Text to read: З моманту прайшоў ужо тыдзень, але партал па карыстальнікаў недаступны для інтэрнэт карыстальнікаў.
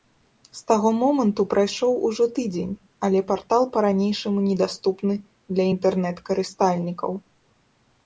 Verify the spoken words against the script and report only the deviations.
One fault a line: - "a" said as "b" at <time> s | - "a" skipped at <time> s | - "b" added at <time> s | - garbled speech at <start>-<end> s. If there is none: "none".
- "таго" added at 0.7 s
- "карыстальнікаў" said as "ранейшаму" at 3.9 s